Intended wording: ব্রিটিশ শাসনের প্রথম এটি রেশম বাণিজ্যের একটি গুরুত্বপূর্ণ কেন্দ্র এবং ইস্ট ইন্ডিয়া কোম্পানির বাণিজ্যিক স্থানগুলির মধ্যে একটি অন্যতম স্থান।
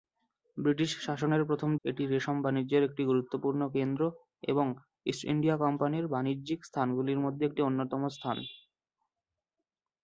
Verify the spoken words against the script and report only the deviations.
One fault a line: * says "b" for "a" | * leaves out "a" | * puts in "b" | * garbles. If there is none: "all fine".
all fine